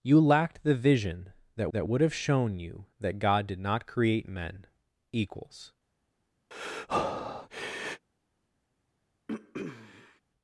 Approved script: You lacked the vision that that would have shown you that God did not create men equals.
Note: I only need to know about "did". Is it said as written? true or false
true